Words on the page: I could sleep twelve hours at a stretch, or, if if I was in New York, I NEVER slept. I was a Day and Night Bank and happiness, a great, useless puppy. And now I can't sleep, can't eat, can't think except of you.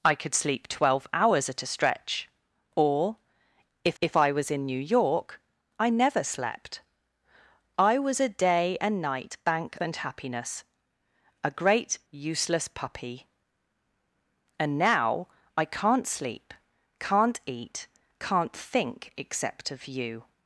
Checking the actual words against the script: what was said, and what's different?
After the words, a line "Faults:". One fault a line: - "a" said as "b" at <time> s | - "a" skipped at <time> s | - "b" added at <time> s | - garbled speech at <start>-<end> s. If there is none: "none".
I could sleep twelve hours at a stretch, or, if if I was in New York, I NEVER slept. I was a Day and Night Bank and happiness, a great, useless puppy. And now I can't sleep, can't eat, can't think except of you.
Faults:
none